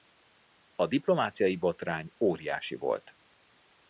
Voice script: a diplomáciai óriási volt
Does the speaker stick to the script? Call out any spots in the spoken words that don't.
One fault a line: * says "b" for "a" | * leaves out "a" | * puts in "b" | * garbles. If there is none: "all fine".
* puts in "botrány"